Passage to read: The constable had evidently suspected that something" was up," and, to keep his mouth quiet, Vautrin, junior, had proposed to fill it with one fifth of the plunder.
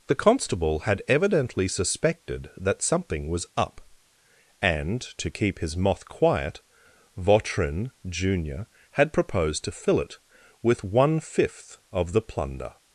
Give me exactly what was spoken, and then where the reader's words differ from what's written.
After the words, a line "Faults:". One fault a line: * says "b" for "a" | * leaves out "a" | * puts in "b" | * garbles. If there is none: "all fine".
The constable had evidently suspected that something" was up," and, to keep his moth quiet, Vautrin, junior, had proposed to fill it with one fifth of the plunder.
Faults:
* says "moth" for "mouth"